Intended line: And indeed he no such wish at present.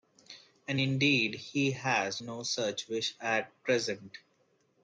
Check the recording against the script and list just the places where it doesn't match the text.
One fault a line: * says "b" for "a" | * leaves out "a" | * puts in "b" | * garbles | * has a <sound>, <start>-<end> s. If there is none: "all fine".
* puts in "has"